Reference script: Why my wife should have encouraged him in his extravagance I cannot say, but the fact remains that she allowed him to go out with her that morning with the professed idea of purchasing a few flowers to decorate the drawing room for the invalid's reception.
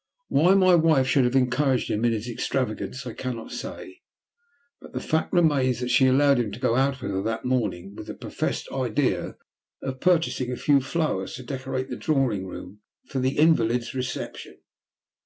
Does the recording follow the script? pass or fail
pass